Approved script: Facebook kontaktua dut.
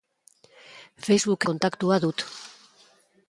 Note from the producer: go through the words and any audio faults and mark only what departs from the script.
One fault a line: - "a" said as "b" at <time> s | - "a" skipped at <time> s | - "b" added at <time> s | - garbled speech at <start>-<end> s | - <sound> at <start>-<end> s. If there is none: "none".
none